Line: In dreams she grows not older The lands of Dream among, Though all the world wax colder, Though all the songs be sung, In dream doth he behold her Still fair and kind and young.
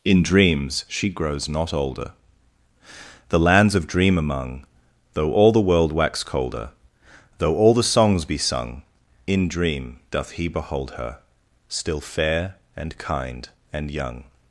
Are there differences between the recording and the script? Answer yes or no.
no